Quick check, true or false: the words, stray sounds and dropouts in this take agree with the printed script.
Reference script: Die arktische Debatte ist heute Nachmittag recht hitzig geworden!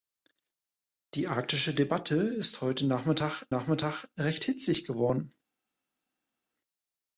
false